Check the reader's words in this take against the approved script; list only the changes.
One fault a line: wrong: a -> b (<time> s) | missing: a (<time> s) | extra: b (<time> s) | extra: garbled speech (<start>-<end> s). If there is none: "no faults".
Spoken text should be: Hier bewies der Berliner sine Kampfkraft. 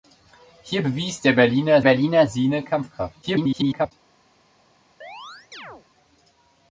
extra: Berliner (1.8 s)
extra: garbled speech (3.2-3.9 s)